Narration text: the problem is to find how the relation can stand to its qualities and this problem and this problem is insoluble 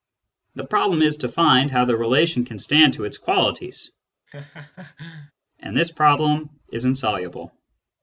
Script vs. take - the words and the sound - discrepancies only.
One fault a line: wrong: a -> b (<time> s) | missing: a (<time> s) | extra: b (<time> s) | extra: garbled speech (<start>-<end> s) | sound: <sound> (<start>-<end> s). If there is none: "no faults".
sound: laugh (4.3-5.3 s)
missing: and this problem (6.5 s)